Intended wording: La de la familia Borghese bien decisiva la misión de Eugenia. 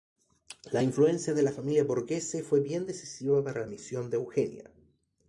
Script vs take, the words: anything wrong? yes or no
yes